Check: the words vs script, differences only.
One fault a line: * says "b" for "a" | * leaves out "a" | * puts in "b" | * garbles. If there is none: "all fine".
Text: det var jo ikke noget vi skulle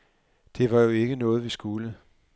all fine